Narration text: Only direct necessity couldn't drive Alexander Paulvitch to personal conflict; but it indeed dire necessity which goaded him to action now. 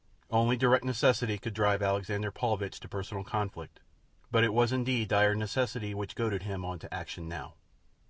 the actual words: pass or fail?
fail